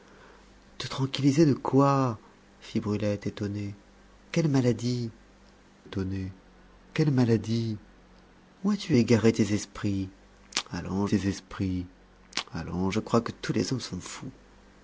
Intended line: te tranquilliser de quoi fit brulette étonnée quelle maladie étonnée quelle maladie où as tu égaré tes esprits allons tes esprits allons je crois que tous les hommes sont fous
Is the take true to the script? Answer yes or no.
yes